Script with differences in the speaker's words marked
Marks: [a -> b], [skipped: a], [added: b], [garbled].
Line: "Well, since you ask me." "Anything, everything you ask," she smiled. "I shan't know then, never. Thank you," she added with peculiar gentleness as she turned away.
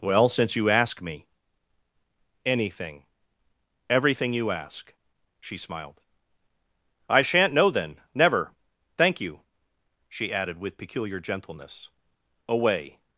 "Well, since you ask me." "Anything, everything you ask," she smiled. "I shan't know then, never. Thank you," she added with peculiar gentleness [skipped: as she turned] away.